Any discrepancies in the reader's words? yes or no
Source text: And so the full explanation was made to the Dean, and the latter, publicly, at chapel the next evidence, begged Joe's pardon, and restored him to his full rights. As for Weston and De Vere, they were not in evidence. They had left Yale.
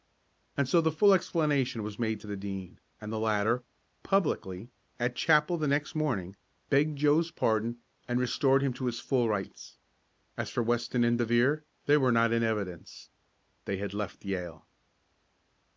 yes